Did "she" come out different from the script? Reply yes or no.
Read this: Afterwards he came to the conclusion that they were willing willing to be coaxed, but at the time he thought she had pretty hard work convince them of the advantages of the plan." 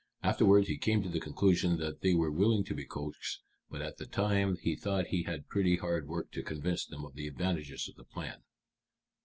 yes